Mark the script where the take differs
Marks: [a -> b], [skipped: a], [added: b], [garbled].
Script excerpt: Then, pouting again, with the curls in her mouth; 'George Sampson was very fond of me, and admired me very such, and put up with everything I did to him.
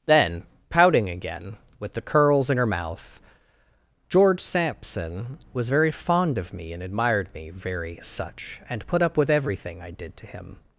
Then, pouting again, with the curls in her mouth; 'George Sampson was very fond of me, and admired me very such, and put up with everything I did to him.